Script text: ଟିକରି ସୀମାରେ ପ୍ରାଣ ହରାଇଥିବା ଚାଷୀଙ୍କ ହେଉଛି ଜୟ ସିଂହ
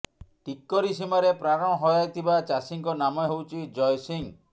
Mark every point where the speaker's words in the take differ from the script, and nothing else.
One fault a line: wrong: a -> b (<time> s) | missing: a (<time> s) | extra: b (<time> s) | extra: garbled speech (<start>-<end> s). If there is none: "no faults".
extra: ନାମ (3.0 s)